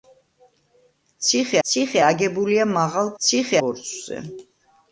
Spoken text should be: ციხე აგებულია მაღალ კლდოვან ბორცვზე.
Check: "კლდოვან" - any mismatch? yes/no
yes